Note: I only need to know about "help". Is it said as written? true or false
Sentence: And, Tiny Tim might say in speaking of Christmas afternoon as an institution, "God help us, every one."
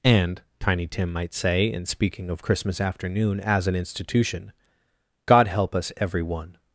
true